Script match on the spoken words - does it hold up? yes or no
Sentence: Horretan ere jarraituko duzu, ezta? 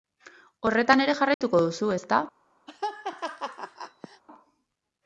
yes